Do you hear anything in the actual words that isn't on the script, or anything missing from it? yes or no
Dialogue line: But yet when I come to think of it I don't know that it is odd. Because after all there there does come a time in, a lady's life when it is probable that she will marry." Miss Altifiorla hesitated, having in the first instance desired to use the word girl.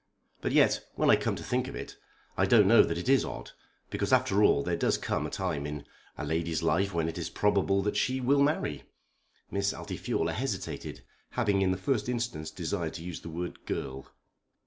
yes